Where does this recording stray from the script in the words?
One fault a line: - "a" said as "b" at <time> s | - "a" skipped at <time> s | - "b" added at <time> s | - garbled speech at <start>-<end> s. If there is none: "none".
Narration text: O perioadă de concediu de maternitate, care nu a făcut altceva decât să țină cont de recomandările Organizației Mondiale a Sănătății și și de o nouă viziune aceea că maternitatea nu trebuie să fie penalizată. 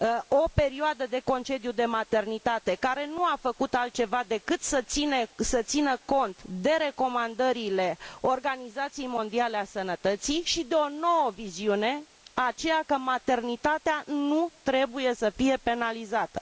- "și" skipped at 10.6 s